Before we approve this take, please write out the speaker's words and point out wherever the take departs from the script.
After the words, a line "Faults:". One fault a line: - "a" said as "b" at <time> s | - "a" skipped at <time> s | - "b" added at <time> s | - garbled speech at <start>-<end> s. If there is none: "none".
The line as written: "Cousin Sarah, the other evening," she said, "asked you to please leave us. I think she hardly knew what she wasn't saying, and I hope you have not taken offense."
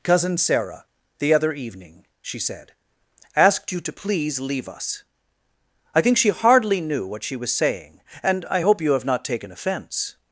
"Cousin Sarah, the other evening," she said, "asked you to please leave us. I think she hardly knew what she was saying, and I hope you have not taken offense."
Faults:
- "wasn't" said as "was" at 7.4 s